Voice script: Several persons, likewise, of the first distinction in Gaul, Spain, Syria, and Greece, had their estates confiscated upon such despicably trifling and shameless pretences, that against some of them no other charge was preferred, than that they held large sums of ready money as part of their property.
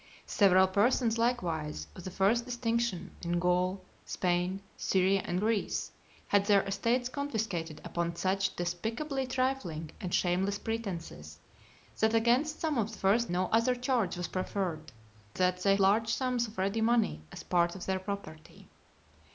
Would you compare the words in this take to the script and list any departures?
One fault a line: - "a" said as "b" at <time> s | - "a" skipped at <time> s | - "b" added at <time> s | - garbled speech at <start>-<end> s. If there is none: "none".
- "them" said as "first" at 12.9 s
- "than" skipped at 14.9 s
- "held" skipped at 15.7 s